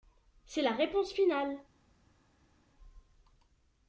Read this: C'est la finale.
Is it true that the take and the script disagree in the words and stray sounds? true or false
true